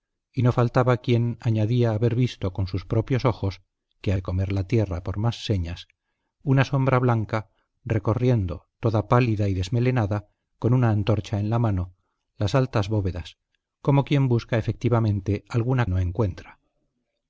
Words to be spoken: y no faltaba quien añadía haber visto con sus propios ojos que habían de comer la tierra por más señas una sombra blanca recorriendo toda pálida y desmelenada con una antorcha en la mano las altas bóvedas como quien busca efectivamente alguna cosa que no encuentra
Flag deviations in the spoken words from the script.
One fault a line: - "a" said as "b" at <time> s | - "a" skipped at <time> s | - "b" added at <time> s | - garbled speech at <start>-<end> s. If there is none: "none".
- "habían" skipped at 4.1 s
- "cosa que" skipped at 15.8 s